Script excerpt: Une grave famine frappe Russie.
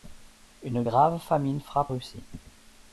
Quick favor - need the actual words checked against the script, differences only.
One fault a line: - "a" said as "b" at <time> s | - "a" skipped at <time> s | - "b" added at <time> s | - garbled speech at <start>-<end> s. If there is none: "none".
none